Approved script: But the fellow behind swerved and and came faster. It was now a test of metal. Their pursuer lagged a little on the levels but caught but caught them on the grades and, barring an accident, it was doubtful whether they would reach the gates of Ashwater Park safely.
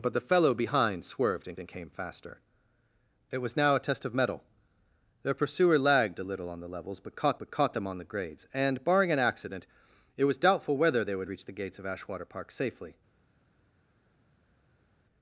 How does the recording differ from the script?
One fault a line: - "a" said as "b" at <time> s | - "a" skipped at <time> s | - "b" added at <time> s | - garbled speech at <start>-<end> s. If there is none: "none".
none